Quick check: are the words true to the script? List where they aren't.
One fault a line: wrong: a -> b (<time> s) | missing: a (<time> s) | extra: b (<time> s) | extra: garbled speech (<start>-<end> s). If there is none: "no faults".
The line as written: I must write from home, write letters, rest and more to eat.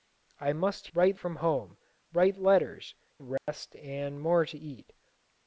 no faults